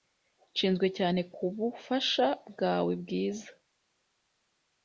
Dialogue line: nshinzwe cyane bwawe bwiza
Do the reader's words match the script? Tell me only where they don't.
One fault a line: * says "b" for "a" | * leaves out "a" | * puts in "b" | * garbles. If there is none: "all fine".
* puts in "kubufasha"